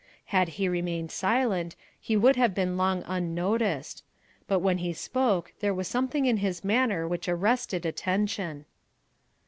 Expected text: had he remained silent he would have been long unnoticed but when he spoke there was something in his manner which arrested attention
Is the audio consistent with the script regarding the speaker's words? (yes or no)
yes